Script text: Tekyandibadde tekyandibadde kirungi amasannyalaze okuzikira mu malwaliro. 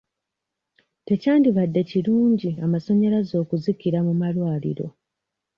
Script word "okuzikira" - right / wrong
right